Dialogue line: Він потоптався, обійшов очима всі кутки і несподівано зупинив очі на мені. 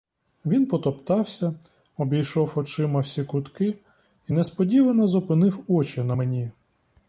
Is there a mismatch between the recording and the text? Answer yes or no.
no